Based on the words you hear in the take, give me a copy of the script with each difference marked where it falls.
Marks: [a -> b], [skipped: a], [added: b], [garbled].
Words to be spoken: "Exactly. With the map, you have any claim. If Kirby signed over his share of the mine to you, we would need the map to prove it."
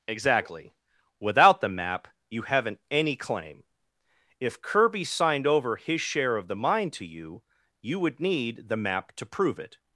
"Exactly. [With -> Without] the map, you [have -> haven't] any claim. If Kirby signed over his share of the mine to you, [we -> you] would need the map to prove it."